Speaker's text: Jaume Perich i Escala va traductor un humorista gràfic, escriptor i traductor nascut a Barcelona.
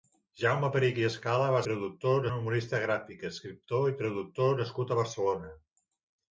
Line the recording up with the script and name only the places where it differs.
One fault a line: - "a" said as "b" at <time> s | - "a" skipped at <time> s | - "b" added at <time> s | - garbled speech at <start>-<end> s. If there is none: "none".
none